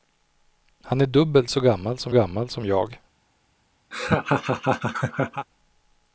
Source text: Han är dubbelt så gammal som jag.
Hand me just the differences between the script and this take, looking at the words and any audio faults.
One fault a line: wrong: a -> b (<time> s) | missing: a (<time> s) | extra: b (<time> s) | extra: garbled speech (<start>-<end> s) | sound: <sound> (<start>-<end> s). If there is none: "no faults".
extra: gammal som (2.1 s)
sound: laugh (3.9-5.5 s)